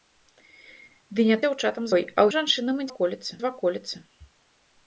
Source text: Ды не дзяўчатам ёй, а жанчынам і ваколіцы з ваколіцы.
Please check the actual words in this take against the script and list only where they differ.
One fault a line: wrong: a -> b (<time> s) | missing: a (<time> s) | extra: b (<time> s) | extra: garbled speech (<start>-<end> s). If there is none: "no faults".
no faults